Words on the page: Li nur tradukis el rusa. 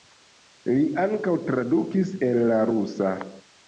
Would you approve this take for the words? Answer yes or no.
no